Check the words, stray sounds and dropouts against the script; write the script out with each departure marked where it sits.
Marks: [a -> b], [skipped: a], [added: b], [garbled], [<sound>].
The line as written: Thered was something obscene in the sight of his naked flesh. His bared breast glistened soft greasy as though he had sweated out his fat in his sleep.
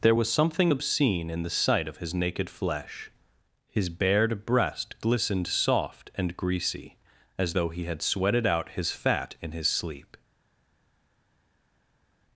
[Thered -> There] was something obscene in the sight of his naked flesh. His bared breast glistened soft [added: and] greasy as though he had sweated out his fat in his sleep.